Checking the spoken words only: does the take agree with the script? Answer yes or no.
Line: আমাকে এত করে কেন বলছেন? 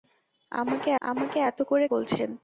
no